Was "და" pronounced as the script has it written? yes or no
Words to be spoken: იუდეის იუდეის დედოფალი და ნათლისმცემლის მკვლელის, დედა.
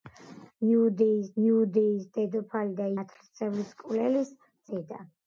yes